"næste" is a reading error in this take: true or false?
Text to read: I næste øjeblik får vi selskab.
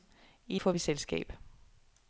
true